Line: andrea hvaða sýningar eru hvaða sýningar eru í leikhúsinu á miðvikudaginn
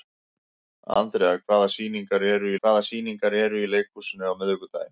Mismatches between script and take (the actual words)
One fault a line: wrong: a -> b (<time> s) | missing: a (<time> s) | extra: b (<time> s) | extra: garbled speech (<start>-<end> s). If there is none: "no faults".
no faults